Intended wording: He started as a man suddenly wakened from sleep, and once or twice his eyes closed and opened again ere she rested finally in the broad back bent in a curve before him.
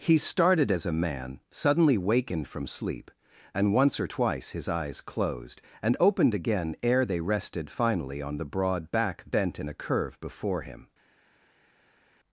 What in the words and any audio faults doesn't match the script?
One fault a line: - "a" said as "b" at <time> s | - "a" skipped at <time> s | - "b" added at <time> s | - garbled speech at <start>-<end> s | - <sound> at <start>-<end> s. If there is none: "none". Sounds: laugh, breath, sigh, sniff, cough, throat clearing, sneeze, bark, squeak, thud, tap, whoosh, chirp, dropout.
- "she" said as "they" at 7.0 s
- "in" said as "on" at 8.2 s